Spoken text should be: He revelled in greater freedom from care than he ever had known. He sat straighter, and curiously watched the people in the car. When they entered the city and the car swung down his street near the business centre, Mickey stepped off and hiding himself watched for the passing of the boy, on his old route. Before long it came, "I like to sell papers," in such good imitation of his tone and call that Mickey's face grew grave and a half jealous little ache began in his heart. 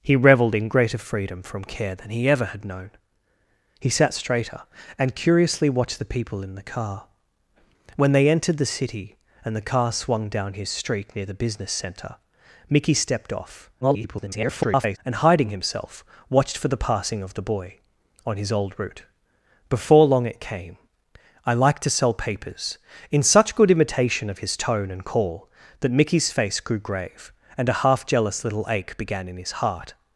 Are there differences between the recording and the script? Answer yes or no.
yes